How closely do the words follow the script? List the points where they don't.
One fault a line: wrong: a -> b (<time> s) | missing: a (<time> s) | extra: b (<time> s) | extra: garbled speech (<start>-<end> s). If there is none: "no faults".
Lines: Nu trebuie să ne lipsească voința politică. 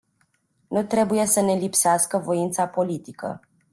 no faults